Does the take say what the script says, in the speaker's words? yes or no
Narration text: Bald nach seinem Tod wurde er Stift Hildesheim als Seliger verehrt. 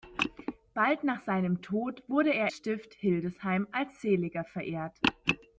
yes